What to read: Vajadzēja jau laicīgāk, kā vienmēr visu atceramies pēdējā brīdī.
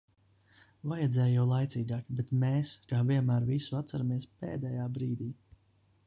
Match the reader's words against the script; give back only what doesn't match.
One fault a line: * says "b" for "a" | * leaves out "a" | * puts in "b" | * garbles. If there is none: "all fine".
* puts in "bet mēs"